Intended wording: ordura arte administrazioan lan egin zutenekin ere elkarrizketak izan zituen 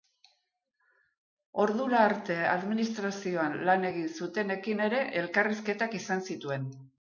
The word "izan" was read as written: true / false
true